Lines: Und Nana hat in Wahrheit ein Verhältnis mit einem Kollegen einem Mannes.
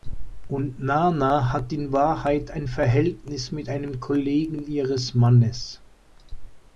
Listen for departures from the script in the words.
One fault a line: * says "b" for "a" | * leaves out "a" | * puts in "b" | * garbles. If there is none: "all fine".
* says "ihres" for "einem"